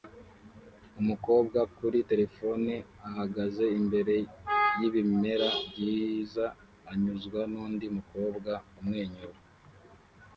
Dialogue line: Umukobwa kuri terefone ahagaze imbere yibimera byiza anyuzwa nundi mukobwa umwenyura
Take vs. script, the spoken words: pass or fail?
pass